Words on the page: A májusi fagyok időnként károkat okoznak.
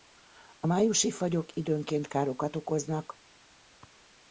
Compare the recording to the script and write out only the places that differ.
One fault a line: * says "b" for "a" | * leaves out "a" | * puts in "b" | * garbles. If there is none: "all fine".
all fine